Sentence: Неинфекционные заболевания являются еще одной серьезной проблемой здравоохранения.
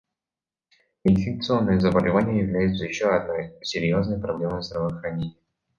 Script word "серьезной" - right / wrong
right